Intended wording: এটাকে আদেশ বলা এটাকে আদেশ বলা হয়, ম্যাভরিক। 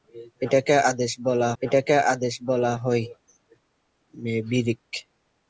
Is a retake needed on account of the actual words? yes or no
no